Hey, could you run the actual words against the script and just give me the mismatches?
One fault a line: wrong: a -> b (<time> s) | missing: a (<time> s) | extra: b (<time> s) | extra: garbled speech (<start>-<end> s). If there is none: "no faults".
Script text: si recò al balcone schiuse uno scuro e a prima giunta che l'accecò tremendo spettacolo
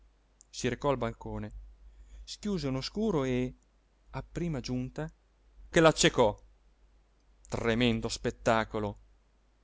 no faults